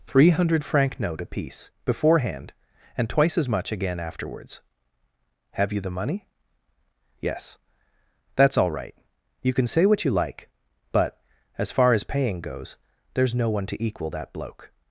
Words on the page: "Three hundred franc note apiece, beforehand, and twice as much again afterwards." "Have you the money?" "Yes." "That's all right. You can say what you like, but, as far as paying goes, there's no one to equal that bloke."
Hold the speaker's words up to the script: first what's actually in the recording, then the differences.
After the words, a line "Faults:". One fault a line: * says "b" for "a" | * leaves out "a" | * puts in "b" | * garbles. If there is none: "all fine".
"Three hundred franc note apiece, beforehand, and twice as much again afterwards." "Have you the money?" "Yes." "That's all right. You can say what you like, but, as far as paying goes, there's no one to equal that bloke."
Faults:
all fine